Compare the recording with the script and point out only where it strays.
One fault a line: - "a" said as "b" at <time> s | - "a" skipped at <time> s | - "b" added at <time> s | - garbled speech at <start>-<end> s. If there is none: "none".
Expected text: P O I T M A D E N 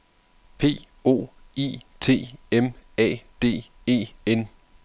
none